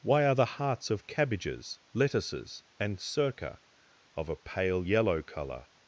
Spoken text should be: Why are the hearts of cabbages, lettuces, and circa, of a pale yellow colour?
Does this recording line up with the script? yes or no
yes